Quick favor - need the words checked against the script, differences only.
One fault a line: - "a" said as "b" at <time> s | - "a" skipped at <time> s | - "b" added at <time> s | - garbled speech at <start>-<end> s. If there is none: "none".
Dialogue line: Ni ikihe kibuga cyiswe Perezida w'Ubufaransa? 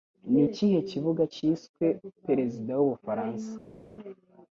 none